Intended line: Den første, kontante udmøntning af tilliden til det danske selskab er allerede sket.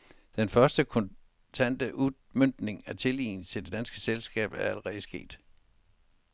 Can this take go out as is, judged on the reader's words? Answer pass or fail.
pass